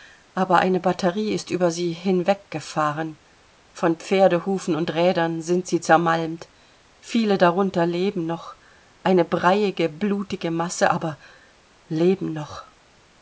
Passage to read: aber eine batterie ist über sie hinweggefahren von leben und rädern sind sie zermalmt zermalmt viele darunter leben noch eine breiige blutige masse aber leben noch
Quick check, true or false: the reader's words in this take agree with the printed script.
false